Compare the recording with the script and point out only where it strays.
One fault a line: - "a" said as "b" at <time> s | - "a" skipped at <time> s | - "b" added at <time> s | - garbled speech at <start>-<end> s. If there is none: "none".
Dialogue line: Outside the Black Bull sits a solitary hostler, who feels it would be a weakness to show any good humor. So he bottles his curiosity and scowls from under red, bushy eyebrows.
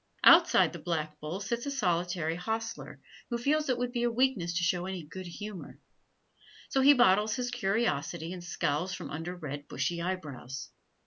none